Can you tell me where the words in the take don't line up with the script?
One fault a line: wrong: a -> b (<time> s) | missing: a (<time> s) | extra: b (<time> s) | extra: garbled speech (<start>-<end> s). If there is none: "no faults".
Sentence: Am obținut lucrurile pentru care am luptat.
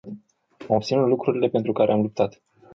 no faults